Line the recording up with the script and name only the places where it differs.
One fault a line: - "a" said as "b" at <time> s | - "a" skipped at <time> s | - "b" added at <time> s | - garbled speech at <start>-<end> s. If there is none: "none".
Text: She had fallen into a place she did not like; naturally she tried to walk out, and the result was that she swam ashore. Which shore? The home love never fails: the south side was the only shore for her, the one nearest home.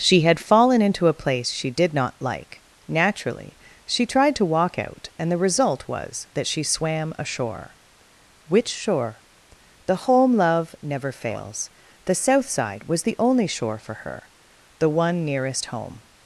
none